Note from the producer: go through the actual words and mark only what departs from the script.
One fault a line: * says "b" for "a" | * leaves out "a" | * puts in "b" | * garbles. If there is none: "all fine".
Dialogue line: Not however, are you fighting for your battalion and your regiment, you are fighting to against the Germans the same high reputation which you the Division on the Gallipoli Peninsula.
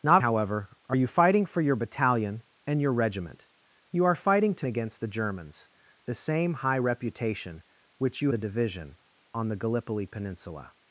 all fine